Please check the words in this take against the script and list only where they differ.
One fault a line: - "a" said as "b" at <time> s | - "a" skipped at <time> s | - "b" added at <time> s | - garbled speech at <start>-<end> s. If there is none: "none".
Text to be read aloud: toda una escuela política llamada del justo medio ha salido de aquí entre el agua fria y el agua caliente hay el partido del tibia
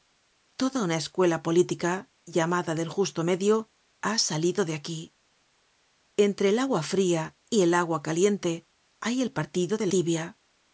none